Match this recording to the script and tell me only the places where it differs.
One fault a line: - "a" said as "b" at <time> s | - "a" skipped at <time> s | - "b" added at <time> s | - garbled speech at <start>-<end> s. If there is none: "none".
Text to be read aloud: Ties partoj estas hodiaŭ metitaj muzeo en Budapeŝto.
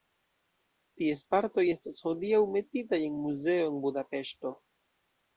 - "en" added at 3.1 s